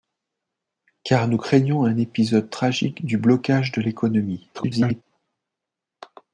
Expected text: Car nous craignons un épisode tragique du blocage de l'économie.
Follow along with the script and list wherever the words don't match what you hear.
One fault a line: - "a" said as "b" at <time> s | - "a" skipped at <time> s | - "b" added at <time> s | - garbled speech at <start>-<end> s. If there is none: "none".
- garbled speech at 4.5-5.0 s